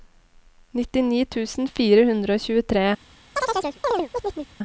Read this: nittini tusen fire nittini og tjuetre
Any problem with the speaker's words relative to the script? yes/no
yes